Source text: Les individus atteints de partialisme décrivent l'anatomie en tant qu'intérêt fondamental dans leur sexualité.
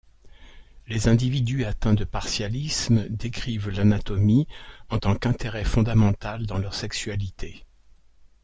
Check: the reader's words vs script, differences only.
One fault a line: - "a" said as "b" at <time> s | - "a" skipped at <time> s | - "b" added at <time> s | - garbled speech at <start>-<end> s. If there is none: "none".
none